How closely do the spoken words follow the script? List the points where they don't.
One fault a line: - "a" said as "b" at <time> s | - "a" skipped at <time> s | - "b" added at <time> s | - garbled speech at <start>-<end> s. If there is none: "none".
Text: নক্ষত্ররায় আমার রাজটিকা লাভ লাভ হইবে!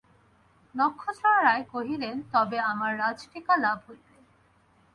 - "কহিলেন তবে" added at 1.7 s
- "লাভ" skipped at 3.8 s